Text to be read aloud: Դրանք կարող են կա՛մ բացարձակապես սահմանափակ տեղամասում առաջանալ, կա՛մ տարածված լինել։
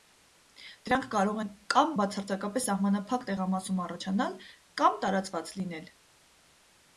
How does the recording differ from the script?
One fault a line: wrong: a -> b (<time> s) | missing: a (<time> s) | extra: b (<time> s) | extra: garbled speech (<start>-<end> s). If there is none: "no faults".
no faults